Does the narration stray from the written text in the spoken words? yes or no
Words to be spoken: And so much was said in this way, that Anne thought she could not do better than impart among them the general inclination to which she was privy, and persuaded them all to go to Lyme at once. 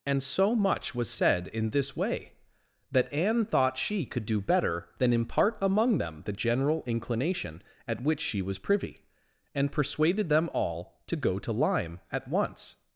yes